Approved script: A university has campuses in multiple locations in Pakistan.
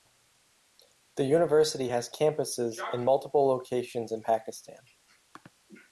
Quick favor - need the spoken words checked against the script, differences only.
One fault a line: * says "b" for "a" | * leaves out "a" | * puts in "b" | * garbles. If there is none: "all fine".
* says "The" for "A"